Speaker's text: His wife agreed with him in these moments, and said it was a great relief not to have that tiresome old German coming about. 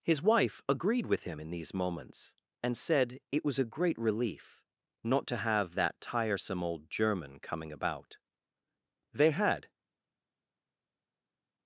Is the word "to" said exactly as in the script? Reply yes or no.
yes